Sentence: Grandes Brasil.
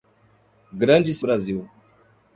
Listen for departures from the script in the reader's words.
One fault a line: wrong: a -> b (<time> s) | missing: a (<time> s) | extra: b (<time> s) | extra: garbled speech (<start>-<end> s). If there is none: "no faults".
no faults